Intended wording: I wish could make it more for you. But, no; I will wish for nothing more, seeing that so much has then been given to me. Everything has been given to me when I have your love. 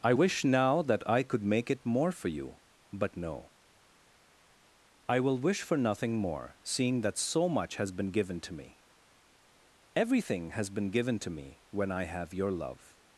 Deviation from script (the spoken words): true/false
true